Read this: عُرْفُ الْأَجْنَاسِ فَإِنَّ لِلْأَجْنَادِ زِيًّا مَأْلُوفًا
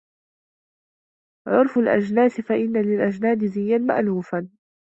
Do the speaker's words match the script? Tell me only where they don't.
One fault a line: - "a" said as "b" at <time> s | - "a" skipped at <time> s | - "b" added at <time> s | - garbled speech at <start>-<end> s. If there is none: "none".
none